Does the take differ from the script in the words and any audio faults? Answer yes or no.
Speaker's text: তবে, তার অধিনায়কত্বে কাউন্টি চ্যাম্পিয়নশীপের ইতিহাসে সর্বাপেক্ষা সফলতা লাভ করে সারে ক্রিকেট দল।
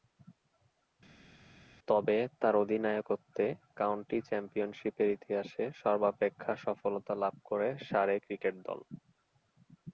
no